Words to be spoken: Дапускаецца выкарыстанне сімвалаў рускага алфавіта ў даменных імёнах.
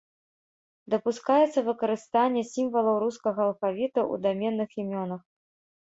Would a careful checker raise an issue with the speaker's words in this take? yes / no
no